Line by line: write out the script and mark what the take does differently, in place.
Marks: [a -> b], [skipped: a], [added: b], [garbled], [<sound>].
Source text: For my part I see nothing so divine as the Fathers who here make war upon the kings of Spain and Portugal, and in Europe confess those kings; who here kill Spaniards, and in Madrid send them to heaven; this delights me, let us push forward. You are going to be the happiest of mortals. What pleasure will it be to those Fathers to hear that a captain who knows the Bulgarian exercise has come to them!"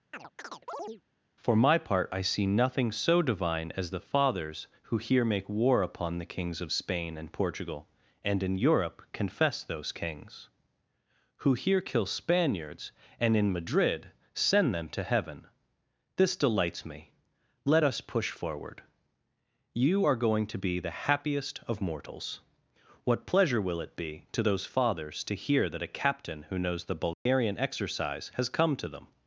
[chirp] For my part I see nothing so divine as the Fathers who here make war upon the kings of Spain and Portugal, and in Europe confess those kings; who here kill Spaniards, and in Madrid send them to heaven; this delights me, let us push forward. You are going to be the happiest of mortals. What pleasure will it be to those Fathers to hear that a captain who knows the Bulgarian [dropout] exercise has come to them!"